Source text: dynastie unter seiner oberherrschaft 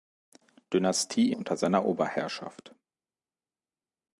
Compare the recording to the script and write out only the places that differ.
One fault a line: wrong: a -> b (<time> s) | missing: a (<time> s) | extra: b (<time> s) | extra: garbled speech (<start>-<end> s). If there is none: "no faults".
no faults